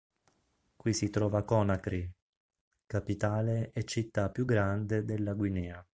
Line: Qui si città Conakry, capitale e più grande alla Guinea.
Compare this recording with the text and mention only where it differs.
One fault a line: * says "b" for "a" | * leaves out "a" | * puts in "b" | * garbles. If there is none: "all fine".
* says "trova" for "città"
* puts in "città"
* says "della" for "alla"